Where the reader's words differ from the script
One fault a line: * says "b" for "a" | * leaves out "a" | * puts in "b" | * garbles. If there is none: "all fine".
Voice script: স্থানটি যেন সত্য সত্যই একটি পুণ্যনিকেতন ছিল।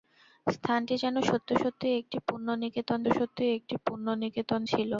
* puts in "সত্যই একটি পুণ্যনিকেতন"